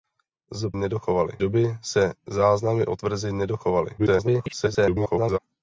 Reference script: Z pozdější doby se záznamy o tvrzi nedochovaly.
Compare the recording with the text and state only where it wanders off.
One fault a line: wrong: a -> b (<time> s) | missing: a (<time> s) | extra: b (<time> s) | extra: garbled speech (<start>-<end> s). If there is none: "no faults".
wrong: pozdější -> nedochovaly (0.7 s)
extra: garbled speech (4.0-5.4 s)